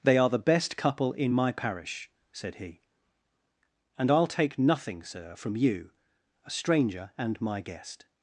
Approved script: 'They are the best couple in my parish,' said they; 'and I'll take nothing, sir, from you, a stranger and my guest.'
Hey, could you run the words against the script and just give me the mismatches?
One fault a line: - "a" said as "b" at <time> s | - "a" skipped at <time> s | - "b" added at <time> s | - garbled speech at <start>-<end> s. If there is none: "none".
- "they" said as "he" at 2.6 s